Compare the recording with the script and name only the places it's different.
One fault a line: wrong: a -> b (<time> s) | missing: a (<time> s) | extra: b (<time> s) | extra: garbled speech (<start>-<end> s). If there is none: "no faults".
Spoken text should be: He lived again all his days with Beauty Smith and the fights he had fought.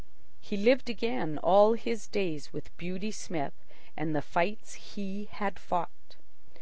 no faults